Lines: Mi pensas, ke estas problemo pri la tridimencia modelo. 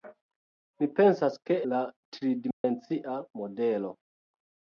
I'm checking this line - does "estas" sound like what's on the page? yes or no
no